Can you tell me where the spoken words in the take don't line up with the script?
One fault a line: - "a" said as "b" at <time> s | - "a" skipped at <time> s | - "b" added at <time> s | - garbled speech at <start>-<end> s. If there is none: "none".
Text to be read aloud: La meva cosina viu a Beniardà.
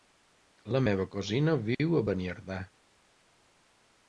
none